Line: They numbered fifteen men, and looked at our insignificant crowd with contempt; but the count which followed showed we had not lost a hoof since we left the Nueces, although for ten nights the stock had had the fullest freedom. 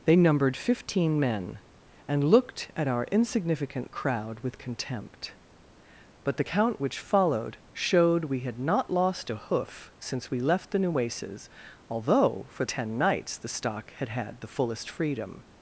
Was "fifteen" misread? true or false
false